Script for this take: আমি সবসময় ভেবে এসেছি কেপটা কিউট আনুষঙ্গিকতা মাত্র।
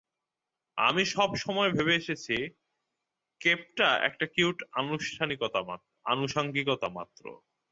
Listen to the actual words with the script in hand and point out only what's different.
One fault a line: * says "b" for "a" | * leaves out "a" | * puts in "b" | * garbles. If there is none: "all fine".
* puts in "একটা"